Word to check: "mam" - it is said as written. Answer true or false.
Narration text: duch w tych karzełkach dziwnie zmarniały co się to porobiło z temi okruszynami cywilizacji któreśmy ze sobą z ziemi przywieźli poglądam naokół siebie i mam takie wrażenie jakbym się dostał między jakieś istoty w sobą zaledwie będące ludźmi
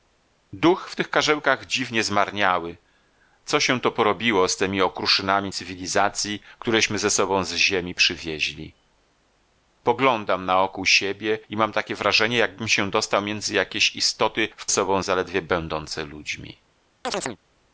true